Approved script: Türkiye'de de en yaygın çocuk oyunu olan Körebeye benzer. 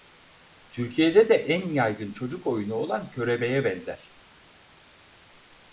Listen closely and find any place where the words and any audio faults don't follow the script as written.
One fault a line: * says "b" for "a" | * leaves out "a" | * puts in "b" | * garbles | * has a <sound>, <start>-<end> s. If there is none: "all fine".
all fine